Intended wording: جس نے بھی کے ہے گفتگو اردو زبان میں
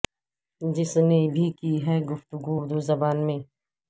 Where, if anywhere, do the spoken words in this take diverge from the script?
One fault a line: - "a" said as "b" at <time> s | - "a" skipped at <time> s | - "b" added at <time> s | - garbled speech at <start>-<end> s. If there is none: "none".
- "کے" said as "کی" at 1.6 s